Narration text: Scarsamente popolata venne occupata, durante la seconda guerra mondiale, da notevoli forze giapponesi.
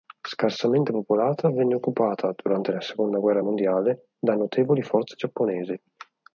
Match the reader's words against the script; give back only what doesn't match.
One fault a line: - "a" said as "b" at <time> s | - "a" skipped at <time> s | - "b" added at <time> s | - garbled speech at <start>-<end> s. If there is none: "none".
none